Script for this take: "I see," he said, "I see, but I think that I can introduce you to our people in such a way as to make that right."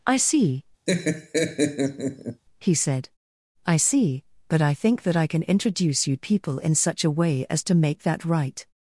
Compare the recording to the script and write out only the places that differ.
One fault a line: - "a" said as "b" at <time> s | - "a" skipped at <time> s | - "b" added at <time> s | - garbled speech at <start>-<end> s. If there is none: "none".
- "to our" skipped at 6.2 s